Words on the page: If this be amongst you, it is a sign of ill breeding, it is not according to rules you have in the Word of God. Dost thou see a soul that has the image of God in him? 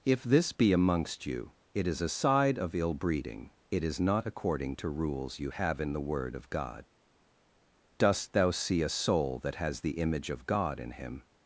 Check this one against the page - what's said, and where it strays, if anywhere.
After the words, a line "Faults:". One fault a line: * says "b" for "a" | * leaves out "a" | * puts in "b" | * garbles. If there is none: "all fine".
If this be amongst you, it is a side of ill breeding, it is not according to rules you have in the Word of God. Dost thou see a soul that has the image of God in him?
Faults:
* says "side" for "sign"